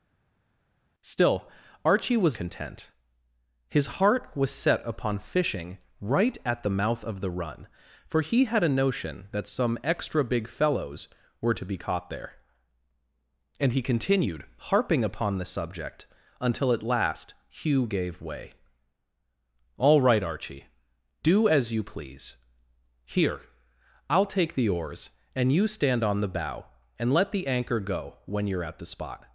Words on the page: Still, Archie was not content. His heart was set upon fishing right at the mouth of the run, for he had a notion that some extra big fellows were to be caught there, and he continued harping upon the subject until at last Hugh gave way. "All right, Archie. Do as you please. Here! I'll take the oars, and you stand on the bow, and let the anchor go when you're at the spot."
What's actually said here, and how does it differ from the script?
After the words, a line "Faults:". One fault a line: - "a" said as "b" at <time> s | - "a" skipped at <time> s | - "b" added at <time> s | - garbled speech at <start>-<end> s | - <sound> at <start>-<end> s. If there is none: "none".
Still, Archie was content. His heart was set upon fishing right at the mouth of the run, for he had a notion that some extra big fellows were to be caught there, and he continued harping upon the subject until at last Hugh gave way. "All right, Archie. Do as you please. Here! I'll take the oars, and you stand on the bow, and let the anchor go when you're at the spot."
Faults:
- "not" skipped at 2.4 s